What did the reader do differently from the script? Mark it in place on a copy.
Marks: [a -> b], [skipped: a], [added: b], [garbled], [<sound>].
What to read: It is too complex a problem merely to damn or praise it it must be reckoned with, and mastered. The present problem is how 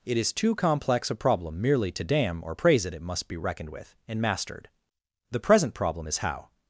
It is too complex a problem merely to damn or praise it it must be reckoned with, and mastered. The present problem is how